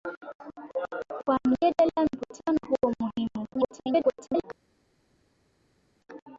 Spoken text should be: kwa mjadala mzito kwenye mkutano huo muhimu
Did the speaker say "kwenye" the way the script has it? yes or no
no